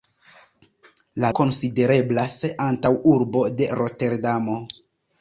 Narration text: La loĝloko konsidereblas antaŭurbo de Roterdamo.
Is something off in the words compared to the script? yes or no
yes